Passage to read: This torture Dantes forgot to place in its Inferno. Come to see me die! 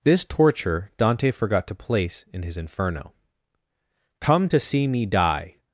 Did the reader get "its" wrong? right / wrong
wrong